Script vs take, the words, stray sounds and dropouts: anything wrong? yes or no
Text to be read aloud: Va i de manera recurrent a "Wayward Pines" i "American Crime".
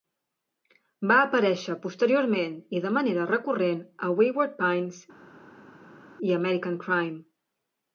yes